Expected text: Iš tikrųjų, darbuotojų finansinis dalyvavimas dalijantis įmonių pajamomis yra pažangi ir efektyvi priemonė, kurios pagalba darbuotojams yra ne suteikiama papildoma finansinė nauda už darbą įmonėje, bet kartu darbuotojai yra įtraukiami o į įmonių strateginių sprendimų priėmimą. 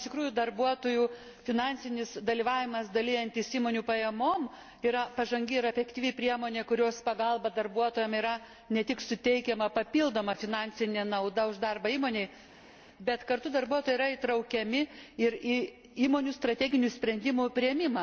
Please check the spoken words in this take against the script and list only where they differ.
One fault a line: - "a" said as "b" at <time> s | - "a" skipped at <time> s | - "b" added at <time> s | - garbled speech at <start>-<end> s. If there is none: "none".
- "tik" added at 8.9 s
- "o" said as "ir" at 15.3 s